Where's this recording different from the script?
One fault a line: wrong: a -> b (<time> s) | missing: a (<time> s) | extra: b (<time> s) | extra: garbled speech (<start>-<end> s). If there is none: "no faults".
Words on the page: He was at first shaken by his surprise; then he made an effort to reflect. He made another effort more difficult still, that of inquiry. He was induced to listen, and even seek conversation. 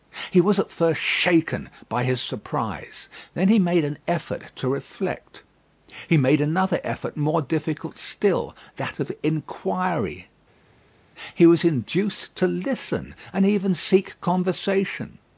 no faults